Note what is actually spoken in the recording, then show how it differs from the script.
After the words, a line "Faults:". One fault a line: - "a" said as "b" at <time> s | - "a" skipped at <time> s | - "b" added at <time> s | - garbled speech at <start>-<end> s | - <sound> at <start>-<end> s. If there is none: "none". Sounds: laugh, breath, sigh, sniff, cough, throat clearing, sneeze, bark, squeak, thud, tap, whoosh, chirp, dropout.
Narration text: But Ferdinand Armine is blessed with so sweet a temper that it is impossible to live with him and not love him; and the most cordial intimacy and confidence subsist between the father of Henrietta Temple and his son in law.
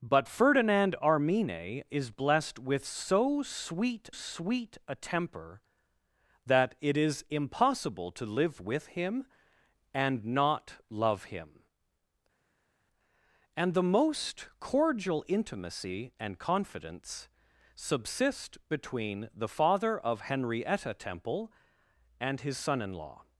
But Ferdinand Armine is blessed with so sweet sweet a temper that it is impossible to live with him and not love him; and the most cordial intimacy and confidence subsist between the father of Henrietta Temple and his son in law.
Faults:
- "sweet" added at 4.1 s